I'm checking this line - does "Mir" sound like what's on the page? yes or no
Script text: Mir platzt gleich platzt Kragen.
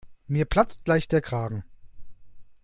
yes